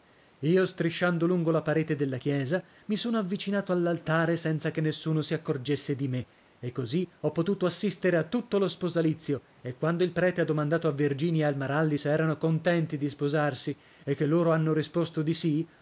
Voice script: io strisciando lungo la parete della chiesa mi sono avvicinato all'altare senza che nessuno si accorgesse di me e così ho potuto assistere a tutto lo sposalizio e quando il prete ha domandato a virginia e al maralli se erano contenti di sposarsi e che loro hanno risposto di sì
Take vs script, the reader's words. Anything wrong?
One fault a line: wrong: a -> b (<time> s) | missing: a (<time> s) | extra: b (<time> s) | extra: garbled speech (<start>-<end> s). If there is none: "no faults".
no faults